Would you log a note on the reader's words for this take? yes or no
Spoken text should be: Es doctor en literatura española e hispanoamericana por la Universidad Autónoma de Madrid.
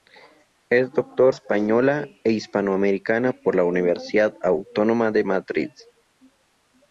yes